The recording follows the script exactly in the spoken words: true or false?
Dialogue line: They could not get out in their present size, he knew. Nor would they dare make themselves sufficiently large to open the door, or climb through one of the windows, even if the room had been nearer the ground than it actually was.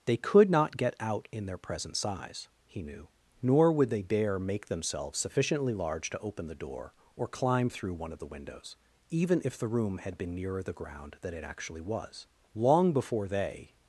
false